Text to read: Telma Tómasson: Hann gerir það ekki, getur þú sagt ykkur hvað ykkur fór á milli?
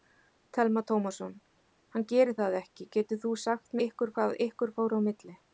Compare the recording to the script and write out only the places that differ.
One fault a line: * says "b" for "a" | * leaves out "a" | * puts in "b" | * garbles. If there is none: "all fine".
all fine